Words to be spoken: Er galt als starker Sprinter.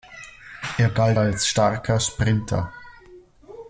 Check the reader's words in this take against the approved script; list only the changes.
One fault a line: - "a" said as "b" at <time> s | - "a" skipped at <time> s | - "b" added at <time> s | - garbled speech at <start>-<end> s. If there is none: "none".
none